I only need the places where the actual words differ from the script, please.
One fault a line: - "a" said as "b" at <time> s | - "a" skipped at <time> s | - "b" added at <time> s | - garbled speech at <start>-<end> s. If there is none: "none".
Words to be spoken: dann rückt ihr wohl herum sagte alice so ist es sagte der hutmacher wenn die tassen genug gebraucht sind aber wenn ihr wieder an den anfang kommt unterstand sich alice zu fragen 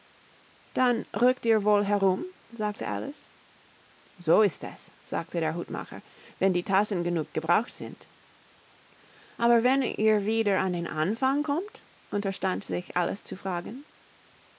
none